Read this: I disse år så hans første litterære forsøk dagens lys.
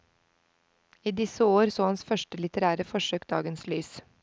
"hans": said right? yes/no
yes